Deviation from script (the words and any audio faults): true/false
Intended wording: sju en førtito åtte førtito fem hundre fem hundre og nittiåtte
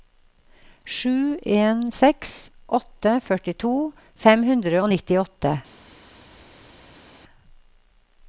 true